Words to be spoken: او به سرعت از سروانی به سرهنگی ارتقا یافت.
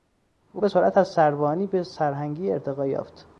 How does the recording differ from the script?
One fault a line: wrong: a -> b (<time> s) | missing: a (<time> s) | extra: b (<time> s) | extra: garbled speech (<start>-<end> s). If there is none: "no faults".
no faults